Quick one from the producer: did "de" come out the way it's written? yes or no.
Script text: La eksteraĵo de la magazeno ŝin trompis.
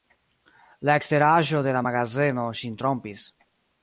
yes